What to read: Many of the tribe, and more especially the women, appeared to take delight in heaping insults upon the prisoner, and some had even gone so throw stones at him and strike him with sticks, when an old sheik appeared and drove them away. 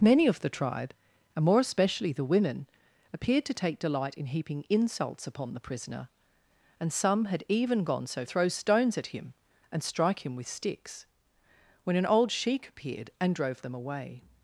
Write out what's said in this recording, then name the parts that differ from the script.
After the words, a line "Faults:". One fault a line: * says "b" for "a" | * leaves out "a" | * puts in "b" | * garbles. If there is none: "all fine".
Many of the tribe, and more especially the women, appeared to take delight in heaping insults upon the prisoner, and some had even gone so throw stones at him and strike him with sticks, when an old sheik appeared and drove them away.
Faults:
all fine